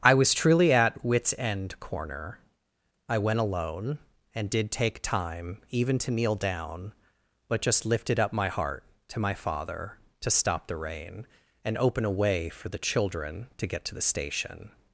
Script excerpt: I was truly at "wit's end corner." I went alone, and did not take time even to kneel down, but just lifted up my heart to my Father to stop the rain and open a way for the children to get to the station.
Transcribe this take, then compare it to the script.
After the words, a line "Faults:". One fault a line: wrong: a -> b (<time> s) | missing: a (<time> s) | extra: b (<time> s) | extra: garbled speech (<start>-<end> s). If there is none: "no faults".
I was truly at "wit's end corner." I went alone, and did take time even to kneel down, but just lifted up my heart to my Father to stop the rain and open a way for the children to get to the station.
Faults:
missing: not (4.7 s)